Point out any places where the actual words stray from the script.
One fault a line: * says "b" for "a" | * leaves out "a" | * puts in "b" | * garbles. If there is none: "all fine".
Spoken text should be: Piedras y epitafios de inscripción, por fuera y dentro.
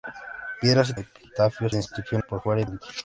all fine